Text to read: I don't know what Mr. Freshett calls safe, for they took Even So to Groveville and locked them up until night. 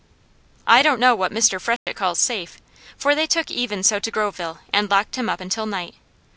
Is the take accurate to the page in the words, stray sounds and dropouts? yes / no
no